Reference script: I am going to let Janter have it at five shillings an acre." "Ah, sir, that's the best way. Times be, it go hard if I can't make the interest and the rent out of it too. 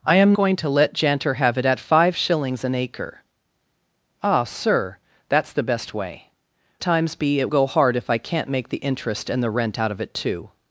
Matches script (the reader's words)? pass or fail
pass